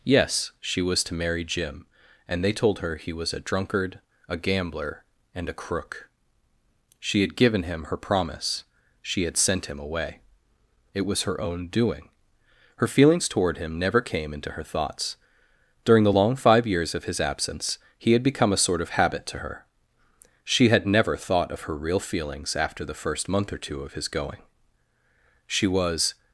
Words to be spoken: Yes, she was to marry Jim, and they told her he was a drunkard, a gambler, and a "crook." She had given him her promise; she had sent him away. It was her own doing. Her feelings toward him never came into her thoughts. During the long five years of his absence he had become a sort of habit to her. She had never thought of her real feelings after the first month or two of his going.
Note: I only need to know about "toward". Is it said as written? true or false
true